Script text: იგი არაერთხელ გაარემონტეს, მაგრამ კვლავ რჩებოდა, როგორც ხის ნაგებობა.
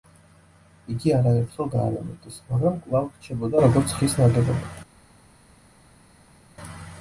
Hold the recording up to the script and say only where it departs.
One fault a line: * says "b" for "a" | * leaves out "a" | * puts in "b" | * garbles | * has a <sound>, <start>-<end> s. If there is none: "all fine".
all fine